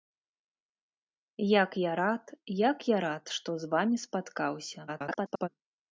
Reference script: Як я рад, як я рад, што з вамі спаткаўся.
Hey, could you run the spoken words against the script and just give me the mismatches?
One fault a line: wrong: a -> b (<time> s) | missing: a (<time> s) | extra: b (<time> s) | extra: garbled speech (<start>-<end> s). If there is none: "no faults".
extra: garbled speech (4.9-5.5 s)